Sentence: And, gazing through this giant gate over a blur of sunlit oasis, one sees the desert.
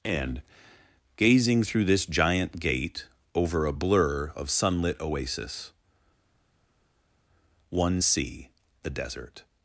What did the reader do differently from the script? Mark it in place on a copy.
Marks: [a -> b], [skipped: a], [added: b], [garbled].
And, gazing through this giant gate over a blur of sunlit oasis, one [sees -> see] the desert.